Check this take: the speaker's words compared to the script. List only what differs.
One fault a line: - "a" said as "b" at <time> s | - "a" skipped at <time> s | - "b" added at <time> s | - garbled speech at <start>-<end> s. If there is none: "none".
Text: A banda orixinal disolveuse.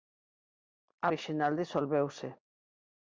- "banda" skipped at 1.1 s